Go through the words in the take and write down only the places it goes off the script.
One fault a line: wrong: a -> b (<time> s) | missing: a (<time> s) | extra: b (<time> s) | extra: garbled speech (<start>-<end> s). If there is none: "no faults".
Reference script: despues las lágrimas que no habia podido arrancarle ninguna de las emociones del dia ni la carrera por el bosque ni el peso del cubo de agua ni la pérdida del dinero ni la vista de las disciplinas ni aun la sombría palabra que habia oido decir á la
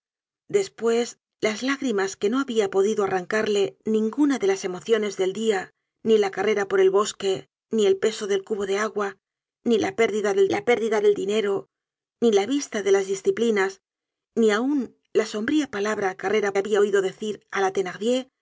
extra: la pérdida del (10.5 s)
wrong: que -> carrera (16.2 s)